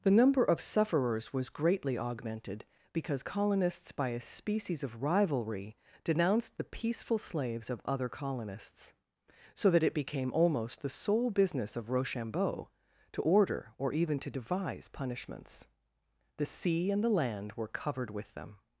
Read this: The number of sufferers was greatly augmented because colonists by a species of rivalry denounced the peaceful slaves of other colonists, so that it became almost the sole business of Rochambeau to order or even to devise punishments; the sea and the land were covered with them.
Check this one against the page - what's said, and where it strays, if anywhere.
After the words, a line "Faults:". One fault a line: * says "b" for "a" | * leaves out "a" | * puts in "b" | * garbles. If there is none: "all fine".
The number of sufferers was greatly augmented because colonists by a species of rivalry denounced the peaceful slaves of other colonists, so that it became almost the sole business of Rochambeau to order or even to devise punishments; the sea and the land were covered with them.
Faults:
all fine